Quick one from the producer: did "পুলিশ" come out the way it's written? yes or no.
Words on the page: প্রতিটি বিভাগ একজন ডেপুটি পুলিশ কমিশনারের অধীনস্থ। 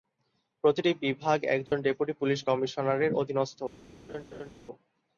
yes